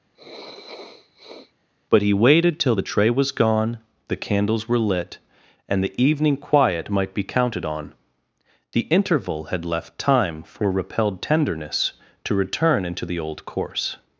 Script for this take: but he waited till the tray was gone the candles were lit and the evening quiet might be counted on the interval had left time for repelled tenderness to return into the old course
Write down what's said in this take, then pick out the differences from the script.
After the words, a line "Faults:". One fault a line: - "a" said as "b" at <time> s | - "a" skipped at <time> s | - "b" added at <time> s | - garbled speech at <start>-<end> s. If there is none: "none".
but he waited till the tray was gone the candles were lit and the evening quiet might be counted on the interval had left time for repelled tenderness to return into the old course
Faults:
none